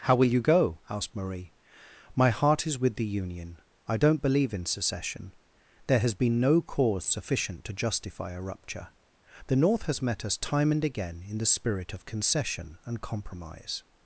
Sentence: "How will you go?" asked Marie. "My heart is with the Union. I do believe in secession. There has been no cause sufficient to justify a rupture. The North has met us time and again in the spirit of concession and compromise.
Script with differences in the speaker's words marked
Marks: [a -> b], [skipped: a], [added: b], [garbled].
"How will you go?" asked Marie. "My heart is with the Union. I [do -> don't] believe in secession. There has been no cause sufficient to justify a rupture. The North has met us time and again in the spirit of concession and compromise.